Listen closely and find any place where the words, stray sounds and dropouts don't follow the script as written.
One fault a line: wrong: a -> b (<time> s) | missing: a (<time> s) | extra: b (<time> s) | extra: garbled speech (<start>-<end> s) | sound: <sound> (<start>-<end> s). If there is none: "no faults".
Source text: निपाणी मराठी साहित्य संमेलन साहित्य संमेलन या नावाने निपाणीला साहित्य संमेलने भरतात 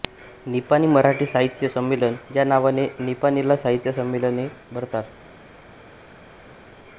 missing: साहित्य संमेलन (2.2 s)